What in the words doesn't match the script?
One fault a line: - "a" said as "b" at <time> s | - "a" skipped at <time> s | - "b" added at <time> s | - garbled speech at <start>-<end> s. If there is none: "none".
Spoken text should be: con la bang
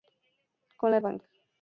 none